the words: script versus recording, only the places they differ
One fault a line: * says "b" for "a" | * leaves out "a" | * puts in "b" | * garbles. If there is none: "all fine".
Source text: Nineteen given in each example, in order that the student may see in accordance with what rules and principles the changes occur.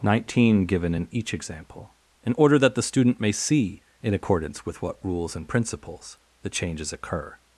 all fine